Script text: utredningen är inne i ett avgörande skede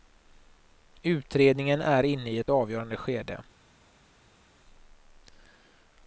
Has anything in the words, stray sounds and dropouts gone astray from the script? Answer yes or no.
no